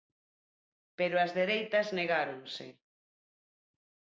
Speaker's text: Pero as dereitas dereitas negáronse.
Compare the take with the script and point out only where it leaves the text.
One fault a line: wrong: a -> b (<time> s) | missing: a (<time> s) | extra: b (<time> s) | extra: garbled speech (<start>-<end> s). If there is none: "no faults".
missing: dereitas (1.9 s)